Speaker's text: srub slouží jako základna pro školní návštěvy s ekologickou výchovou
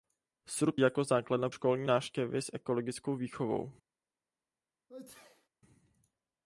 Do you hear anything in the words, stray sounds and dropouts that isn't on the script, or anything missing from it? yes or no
yes